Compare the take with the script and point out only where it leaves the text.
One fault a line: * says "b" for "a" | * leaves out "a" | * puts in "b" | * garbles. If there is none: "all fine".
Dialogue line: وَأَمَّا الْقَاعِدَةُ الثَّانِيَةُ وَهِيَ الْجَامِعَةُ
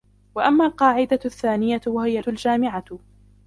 all fine